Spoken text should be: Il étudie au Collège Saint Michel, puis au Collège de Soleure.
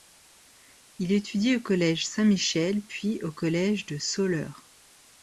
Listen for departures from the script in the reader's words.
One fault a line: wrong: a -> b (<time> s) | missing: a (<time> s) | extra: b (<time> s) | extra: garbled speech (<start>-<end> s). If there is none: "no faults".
no faults